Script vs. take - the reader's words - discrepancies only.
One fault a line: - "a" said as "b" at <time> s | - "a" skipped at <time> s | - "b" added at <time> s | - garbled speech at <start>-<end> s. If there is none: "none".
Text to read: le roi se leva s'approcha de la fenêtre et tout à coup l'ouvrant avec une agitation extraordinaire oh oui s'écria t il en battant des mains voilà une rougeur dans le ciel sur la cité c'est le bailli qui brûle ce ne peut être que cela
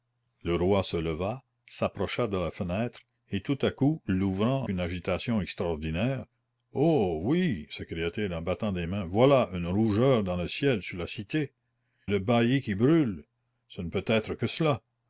- "avec" skipped at 4.7 s
- "c'est" skipped at 11.5 s